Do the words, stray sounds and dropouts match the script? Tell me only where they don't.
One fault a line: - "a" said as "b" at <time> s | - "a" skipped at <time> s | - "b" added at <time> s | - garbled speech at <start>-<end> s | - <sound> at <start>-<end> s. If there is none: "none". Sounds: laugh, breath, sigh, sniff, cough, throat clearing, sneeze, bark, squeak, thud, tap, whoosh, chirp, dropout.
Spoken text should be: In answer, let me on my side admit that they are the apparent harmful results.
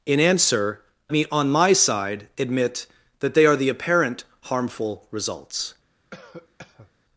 - "let" skipped at 0.8 s
- cough at 6.1-6.9 s